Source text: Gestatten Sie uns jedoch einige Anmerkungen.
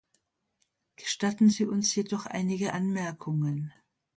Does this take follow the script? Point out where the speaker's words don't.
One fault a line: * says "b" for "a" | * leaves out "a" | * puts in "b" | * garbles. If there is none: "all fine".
all fine